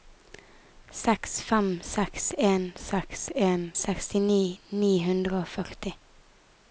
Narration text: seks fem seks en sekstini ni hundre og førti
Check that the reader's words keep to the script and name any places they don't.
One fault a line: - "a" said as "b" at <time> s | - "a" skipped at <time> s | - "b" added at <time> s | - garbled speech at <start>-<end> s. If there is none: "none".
- "seks en" added at 2.8 s